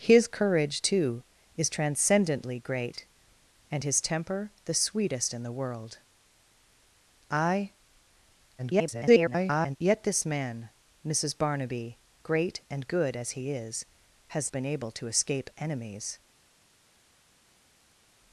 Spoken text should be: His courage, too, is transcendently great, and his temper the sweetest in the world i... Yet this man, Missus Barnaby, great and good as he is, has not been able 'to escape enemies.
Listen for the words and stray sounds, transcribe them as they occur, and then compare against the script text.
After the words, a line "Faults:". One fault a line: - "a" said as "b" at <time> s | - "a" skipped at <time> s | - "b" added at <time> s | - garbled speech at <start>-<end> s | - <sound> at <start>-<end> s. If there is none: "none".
His courage, too, is transcendently great, and his temper the sweetest in the world i... [garbled] Yet this man, Missus Barnaby, great and good as he is, has been able 'to escape enemies.
Faults:
- garbled speech at 8.6-9.8 s
- "not" skipped at 14.5 s